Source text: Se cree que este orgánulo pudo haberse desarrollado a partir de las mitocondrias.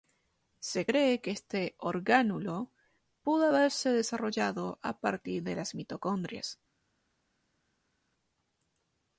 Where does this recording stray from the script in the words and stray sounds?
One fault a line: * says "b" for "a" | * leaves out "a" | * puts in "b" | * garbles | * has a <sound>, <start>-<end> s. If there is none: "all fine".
all fine